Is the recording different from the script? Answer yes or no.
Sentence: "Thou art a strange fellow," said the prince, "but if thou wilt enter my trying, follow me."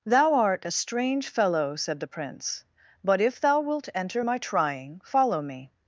no